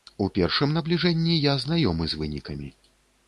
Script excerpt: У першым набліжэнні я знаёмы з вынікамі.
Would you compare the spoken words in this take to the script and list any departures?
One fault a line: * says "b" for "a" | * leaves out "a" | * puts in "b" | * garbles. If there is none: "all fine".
all fine